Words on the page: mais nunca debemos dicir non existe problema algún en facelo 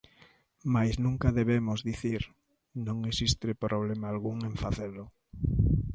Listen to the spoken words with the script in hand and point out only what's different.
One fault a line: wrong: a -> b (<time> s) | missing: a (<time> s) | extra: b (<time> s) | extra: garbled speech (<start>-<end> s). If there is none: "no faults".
no faults